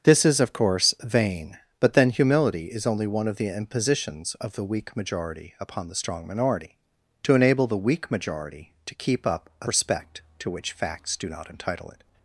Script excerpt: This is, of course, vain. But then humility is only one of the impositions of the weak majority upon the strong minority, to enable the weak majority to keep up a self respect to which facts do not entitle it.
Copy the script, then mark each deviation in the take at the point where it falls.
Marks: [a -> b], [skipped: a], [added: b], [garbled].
This is, of course, vain. But then humility is only one of the impositions of the weak majority upon the strong minority, to enable the weak majority to keep up a [skipped: self] respect to which facts do not entitle it.